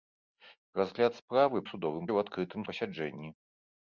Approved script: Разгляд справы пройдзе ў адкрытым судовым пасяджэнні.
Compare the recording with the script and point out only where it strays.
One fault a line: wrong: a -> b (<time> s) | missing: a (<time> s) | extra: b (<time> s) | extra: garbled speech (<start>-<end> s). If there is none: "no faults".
wrong: пройдзе -> судовым (1.7 s)
missing: судовым (2.6 s)